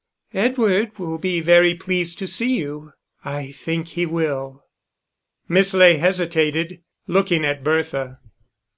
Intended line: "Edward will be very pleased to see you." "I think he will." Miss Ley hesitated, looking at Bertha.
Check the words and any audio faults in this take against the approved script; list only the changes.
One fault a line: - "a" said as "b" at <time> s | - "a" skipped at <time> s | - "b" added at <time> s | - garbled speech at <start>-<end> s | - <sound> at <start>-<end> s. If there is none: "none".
none